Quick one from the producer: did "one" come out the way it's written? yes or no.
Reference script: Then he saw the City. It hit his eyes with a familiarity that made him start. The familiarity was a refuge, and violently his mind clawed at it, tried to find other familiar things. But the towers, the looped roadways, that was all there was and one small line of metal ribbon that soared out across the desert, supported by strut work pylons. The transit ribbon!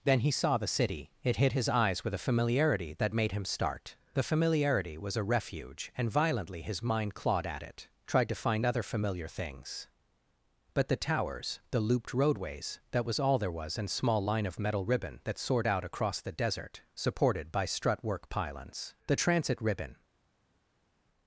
no